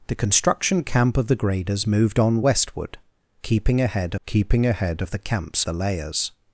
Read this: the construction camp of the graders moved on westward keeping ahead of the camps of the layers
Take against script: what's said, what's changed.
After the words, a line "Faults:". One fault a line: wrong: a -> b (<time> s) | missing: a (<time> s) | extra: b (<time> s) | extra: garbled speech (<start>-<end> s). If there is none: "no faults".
the construction camp of the graders moved on westward keeping ahead keeping ahead of the camps the layers
Faults:
extra: keeping ahead (4.2 s)
missing: of (5.7 s)